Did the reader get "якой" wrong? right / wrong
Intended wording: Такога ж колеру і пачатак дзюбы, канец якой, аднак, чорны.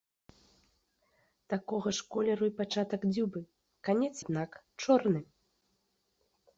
wrong